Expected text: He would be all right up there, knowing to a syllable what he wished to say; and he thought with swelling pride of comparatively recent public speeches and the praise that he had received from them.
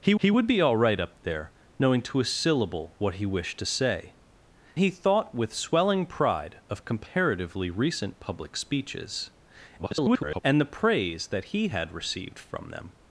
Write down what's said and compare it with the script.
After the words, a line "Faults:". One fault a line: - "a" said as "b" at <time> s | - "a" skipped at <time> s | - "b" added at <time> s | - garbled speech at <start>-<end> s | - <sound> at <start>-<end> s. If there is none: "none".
He he would be all right up there, knowing to a syllable what he wished to say; he thought with swelling pride of comparatively recent public speeches [garbled] and the praise that he had received from them.
Faults:
- "he" added at 0.2 s
- "and" skipped at 4.1 s
- garbled speech at 9.8-10.4 s